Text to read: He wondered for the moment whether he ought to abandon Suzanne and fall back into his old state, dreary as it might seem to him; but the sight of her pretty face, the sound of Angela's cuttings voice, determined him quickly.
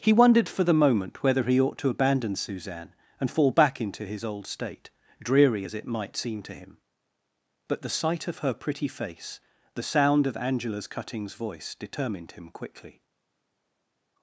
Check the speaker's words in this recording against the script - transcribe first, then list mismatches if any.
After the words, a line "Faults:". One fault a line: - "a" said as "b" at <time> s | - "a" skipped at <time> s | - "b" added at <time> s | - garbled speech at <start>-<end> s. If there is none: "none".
He wondered for the moment whether he ought to abandon Suzanne and fall back into his old state, dreary as it might seem to him; but the sight of her pretty face, the sound of Angela's cuttings voice, determined him quickly.
Faults:
none